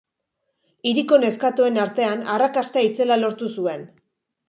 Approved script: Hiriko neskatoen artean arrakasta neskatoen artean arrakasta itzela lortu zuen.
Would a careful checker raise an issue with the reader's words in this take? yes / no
yes